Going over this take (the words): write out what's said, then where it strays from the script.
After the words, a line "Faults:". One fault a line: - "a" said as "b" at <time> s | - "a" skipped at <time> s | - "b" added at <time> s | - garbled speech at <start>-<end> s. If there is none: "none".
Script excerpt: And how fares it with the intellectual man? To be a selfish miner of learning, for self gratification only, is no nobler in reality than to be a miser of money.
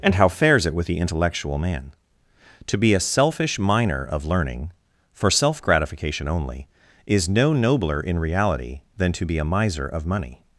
And how fares it with the intellectual man? To be a selfish miner of learning, for self gratification only, is no nobler in reality than to be a miser of money.
Faults:
none